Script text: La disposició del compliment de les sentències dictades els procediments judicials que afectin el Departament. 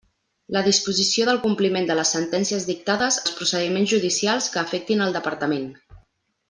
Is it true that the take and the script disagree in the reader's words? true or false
false